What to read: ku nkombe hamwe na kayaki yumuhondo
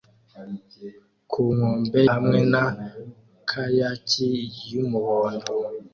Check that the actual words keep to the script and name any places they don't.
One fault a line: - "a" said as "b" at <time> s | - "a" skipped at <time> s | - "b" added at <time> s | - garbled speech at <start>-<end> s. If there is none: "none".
none